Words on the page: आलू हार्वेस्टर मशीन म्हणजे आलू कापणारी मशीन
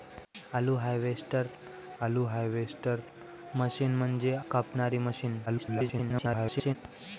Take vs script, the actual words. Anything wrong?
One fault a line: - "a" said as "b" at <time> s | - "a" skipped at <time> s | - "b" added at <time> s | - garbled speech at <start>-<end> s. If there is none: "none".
- "आलू हार्वेस्टर" added at 2.0 s
- "आलू" skipped at 4.3 s
- garbled speech at 5.5-6.8 s